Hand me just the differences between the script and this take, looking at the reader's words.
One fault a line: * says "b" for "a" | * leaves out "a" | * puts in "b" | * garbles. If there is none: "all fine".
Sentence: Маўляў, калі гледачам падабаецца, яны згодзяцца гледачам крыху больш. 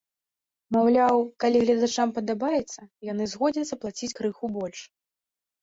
* says "плаціць" for "гледачам"